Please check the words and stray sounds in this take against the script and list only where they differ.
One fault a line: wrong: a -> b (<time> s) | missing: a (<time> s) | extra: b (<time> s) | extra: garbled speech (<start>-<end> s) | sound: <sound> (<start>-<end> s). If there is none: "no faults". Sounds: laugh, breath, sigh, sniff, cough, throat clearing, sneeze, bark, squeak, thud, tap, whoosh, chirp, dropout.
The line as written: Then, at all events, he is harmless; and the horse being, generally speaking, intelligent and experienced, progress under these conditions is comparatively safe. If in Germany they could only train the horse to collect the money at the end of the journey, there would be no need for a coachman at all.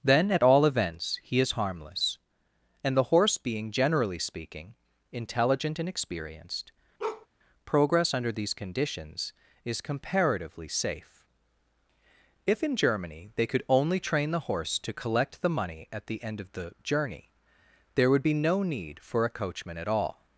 sound: bark (7.0-7.3 s)